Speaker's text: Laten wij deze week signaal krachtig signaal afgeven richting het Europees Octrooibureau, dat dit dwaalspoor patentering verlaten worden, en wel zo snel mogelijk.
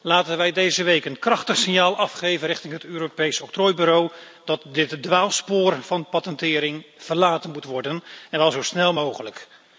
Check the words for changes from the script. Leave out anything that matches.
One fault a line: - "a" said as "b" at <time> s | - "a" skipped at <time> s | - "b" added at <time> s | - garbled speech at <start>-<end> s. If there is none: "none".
- "signaal" said as "een" at 1.1 s
- "van" added at 5.8 s
- "moet" added at 7.5 s